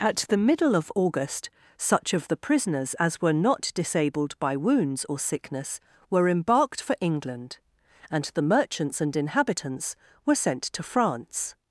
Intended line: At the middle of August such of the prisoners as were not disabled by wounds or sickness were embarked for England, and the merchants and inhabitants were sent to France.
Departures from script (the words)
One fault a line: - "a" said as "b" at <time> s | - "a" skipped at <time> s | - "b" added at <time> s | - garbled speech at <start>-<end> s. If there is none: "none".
none